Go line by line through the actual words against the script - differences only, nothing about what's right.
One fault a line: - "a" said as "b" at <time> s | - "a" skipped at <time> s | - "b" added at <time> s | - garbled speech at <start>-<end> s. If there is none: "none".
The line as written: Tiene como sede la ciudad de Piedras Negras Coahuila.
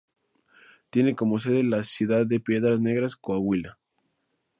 none